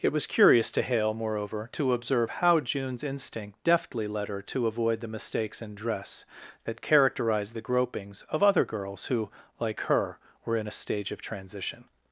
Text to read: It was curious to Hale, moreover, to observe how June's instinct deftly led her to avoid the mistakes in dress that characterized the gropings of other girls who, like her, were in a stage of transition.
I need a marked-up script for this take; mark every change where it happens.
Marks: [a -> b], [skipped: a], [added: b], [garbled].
It was curious to Hale, moreover, to observe how June's instinct deftly led her to avoid the mistakes in dress that characterized the gropings of other girls who, like her, were in a stage of transition.